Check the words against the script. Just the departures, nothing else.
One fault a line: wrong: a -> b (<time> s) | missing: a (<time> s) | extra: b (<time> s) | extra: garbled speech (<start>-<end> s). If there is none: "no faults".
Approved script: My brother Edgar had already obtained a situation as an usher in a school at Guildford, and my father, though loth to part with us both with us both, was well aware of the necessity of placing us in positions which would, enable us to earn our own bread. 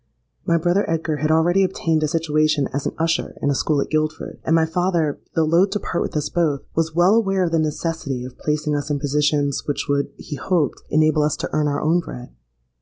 missing: with us both (6.6 s)
extra: he hoped (10.2 s)